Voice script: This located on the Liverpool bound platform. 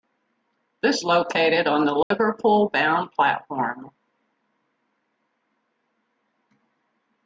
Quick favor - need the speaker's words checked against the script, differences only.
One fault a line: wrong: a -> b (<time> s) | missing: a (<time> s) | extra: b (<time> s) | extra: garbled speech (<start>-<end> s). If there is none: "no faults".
no faults